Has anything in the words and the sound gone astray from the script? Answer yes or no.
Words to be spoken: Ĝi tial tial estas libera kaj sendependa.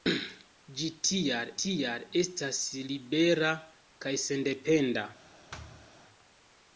yes